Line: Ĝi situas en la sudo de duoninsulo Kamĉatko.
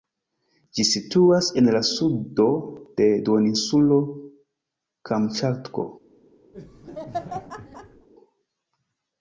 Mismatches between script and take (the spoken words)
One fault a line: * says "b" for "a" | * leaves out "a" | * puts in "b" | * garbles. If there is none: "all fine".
all fine